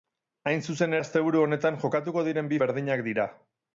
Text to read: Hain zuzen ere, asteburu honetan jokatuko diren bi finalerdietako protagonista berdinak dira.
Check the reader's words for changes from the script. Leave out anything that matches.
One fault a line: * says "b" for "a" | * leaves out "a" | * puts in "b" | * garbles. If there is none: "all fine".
* leaves out "ere"
* leaves out "finalerdietako protagonista"